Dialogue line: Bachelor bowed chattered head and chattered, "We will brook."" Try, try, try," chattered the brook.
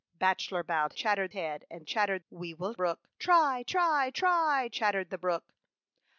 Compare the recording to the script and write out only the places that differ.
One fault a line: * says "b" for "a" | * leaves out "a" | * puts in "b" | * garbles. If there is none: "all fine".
all fine